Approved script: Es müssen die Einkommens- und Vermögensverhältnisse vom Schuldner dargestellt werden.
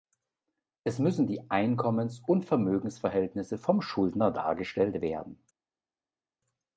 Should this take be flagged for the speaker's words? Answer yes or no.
no